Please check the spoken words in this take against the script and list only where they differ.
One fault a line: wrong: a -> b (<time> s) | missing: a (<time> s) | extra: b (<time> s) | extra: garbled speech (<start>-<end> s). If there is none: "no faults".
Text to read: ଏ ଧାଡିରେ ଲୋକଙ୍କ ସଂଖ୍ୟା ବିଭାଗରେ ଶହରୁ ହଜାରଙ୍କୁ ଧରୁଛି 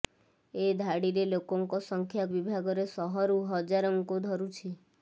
no faults